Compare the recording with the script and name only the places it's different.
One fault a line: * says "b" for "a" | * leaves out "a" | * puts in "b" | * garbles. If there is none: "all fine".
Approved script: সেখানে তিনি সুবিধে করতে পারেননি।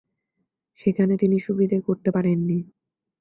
all fine